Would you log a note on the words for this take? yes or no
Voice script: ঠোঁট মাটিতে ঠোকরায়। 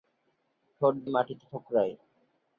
no